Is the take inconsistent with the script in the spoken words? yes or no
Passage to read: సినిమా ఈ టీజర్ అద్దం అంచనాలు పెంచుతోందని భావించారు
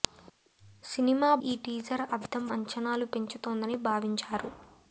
no